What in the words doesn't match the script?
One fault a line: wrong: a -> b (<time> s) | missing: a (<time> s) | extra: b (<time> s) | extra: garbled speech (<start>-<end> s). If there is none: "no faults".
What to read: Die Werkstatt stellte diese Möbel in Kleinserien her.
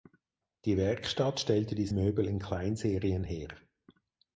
no faults